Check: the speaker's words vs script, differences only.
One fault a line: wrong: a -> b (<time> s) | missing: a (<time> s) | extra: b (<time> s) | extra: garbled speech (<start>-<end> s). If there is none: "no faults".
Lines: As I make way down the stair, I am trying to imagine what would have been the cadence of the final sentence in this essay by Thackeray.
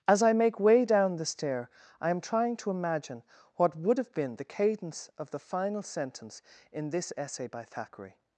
no faults